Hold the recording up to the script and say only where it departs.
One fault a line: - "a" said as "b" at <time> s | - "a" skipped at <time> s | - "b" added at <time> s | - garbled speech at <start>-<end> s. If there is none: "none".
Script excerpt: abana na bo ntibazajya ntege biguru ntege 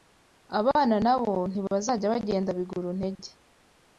- "ntege" said as "bagenda" at 2.1 s